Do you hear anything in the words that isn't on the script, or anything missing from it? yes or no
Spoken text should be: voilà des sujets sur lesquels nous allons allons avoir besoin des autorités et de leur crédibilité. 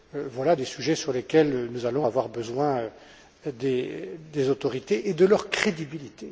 yes